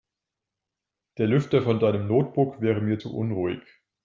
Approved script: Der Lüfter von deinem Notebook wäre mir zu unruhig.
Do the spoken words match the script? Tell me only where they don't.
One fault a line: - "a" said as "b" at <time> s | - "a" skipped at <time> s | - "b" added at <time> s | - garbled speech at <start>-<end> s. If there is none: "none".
none